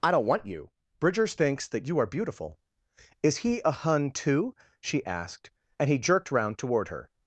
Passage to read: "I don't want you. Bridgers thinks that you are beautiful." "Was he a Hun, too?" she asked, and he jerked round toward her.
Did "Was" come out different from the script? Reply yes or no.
yes